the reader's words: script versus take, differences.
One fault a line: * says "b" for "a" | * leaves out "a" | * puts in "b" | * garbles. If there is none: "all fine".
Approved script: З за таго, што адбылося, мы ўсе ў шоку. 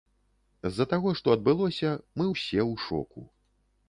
all fine